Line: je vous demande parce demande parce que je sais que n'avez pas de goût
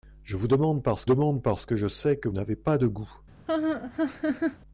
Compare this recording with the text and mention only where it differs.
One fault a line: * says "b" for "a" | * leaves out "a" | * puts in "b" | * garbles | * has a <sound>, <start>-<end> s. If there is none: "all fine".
* has a laugh, 3.5-4.6 s